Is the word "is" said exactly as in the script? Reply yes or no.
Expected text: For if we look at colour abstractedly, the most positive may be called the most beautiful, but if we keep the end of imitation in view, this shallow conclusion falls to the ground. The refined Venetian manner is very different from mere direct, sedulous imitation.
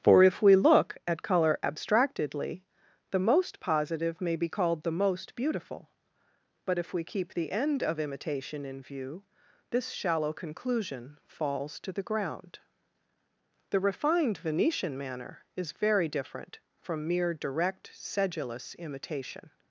yes